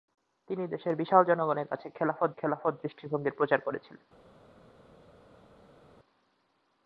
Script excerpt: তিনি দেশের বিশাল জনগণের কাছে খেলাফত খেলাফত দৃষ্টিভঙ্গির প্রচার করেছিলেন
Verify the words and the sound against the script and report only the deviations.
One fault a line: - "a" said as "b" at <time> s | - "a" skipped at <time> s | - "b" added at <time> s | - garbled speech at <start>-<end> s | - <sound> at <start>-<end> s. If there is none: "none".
none